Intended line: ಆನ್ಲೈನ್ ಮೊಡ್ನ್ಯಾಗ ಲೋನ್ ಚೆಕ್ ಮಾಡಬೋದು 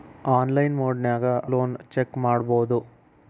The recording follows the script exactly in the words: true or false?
true